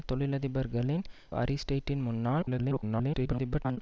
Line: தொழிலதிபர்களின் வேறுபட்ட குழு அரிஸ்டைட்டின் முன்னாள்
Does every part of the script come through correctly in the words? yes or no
no